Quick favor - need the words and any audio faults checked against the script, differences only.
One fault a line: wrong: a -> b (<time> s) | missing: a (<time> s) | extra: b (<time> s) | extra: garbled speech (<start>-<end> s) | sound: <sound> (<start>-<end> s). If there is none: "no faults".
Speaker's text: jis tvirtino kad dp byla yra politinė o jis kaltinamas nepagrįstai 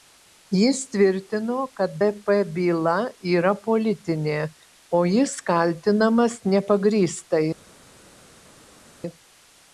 no faults